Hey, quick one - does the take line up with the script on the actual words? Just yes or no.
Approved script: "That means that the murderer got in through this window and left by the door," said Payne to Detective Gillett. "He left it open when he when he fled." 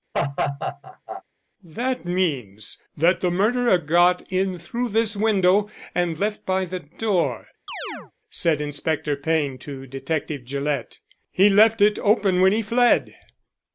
no